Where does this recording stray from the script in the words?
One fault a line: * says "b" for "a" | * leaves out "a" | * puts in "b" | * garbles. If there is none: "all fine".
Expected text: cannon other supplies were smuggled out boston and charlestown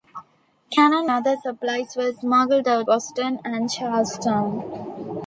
all fine